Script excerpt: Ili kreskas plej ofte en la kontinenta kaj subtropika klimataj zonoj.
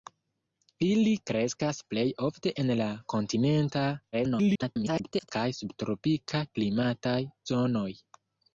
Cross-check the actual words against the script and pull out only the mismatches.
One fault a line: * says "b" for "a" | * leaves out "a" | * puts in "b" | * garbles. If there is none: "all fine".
* garbles